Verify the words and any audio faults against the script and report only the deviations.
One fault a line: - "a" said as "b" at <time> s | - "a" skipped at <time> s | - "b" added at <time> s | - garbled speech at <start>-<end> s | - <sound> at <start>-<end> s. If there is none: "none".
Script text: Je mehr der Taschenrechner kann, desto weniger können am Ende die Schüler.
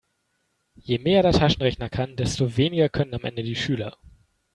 none